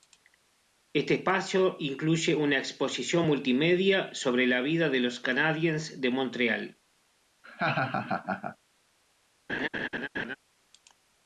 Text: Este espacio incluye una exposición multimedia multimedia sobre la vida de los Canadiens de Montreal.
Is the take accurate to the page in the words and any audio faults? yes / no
no